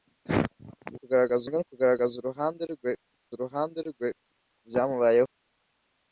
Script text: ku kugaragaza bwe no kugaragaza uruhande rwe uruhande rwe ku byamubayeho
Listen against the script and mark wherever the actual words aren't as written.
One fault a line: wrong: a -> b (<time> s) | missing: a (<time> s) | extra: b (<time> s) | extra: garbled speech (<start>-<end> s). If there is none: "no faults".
no faults